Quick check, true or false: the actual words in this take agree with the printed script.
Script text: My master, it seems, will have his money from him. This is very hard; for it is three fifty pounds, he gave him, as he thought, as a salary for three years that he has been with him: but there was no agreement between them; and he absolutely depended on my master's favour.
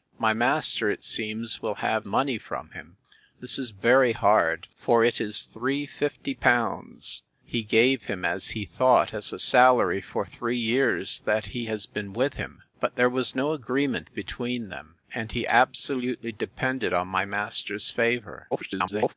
false